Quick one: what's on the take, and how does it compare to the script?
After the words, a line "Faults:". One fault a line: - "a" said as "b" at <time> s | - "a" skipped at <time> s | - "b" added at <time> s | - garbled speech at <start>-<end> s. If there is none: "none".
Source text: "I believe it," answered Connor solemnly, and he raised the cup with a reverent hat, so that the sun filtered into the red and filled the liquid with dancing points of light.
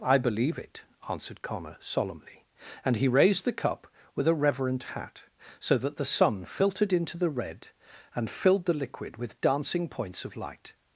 "I believe it," answered Connor solemnly, and he raised the cup with a reverent hat, so that the sun filtered into the red and filled the liquid with dancing points of light.
Faults:
none